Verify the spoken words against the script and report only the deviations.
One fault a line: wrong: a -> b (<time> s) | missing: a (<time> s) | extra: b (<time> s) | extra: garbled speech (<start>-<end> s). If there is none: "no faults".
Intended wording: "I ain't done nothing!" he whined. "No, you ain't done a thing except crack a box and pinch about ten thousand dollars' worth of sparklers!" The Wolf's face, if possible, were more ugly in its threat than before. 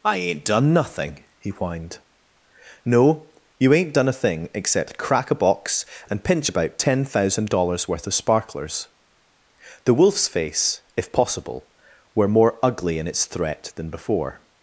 no faults